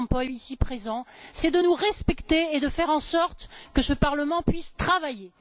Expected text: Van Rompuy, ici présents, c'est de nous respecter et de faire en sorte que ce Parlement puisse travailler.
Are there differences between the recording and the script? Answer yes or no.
no